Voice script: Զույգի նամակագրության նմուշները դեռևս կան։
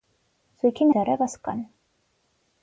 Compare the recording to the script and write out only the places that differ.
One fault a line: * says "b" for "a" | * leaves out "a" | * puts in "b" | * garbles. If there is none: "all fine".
* leaves out "նամակագրության նմուշները"